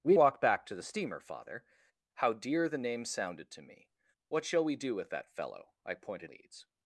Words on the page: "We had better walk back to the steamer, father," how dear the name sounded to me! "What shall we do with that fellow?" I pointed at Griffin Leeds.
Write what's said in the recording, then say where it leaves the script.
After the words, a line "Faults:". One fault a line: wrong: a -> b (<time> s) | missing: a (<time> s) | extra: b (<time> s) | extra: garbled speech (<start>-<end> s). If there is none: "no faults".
"We walk back to the steamer, father," how dear the name sounded to me! "What shall we do with that fellow?" I pointed Leeds.
Faults:
missing: had better (0.1 s)
missing: at Griffin (6.3 s)